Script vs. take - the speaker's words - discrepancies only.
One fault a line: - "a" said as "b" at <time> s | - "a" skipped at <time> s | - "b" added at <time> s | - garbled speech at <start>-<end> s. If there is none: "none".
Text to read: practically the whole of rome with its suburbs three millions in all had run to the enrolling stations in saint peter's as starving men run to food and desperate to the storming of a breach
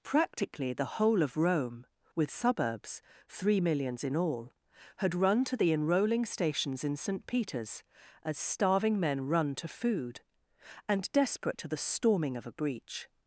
- "its" skipped at 2.3 s